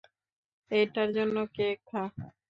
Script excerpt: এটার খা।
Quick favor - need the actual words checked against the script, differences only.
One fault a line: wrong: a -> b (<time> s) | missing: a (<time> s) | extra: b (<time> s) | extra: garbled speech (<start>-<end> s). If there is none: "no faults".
extra: জন্য কেক (1.2 s)